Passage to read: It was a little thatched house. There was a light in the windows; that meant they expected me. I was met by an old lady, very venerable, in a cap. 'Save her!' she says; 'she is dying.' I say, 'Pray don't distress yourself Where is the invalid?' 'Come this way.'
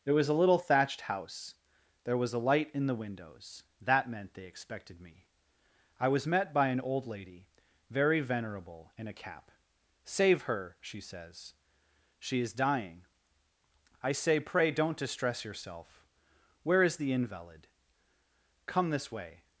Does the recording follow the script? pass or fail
pass